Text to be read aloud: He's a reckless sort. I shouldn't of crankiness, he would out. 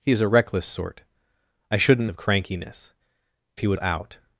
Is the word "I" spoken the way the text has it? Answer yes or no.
yes